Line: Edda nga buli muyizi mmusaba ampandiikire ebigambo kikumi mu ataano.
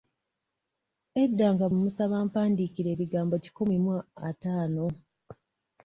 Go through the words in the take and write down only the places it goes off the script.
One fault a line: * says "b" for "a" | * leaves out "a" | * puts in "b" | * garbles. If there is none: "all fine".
* leaves out "buli muyizi"